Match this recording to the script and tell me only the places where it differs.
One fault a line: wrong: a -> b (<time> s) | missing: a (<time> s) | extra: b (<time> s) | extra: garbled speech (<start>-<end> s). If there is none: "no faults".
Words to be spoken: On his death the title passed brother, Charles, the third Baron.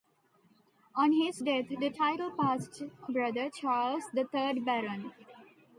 no faults